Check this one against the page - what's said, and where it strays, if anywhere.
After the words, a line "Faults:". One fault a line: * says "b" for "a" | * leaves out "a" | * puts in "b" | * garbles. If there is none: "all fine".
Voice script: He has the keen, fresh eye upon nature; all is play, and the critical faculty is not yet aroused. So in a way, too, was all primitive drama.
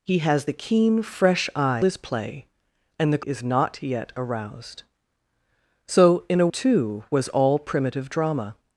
He has the keen, fresh eye is play, and the is not yet aroused. So in a too, was all primitive drama.
Faults:
* leaves out "upon nature all"
* leaves out "critical faculty"
* leaves out "way"